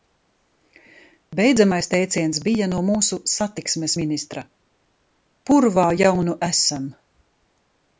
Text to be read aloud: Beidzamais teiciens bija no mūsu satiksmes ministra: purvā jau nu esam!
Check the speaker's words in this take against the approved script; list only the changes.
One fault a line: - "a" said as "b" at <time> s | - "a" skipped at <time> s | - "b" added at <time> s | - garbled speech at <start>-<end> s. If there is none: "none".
none